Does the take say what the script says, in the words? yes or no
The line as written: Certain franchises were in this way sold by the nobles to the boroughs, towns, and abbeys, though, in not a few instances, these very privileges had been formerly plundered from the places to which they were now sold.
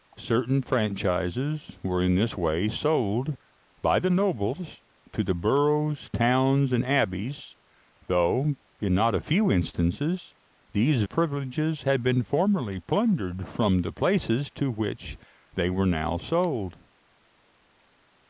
no